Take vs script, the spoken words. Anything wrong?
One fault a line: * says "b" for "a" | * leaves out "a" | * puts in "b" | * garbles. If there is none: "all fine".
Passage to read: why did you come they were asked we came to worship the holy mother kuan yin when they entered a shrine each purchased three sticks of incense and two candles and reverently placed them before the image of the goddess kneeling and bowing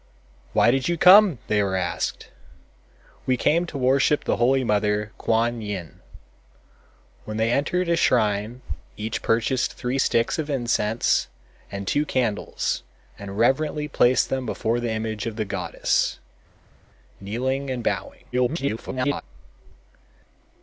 * garbles